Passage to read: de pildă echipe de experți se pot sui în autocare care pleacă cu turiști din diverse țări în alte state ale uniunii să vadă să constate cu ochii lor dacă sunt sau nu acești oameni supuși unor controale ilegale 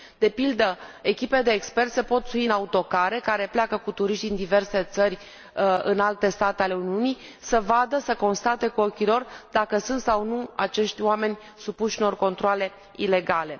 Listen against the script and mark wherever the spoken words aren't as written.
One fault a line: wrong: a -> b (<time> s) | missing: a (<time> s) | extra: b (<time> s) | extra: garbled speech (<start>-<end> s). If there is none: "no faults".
no faults